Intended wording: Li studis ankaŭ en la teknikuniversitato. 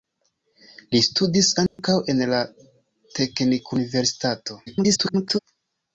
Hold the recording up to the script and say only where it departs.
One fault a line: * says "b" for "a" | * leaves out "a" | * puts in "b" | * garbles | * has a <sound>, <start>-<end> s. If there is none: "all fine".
* has a dropout, 1.7-1.8 s
* garbles